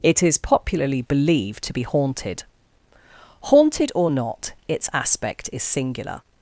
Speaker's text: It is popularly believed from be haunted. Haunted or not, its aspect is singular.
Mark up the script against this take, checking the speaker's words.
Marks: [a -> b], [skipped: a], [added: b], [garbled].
It is popularly believed [from -> to] be haunted. Haunted or not, its aspect is singular.